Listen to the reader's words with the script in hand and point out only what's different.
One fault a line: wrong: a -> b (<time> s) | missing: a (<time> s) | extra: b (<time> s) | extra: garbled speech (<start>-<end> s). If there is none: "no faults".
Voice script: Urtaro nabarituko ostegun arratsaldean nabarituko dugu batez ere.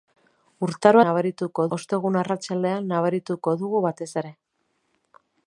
no faults